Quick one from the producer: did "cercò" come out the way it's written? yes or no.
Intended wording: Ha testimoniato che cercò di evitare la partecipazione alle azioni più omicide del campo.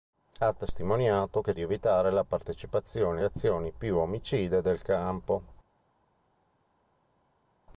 no